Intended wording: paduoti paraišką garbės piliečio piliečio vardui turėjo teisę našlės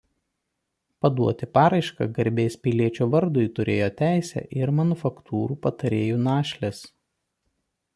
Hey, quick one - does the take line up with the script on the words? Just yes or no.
no